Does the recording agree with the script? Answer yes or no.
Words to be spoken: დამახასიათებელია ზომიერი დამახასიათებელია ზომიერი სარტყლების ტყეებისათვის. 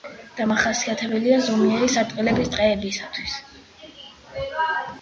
no